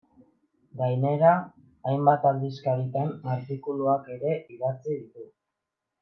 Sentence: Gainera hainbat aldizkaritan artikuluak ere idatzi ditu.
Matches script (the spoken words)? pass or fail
pass